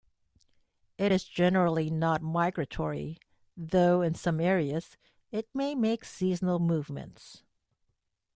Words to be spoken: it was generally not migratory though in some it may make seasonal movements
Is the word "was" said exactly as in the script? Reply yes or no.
no